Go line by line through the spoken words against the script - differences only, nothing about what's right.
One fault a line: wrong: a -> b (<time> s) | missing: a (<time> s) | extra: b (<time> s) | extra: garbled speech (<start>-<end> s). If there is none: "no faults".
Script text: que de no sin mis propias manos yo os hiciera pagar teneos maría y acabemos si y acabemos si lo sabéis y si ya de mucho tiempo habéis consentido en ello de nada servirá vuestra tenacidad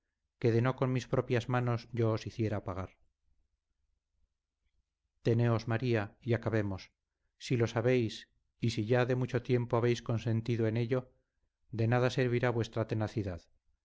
wrong: sin -> con (0.8 s)
missing: y acabemos si (7.5 s)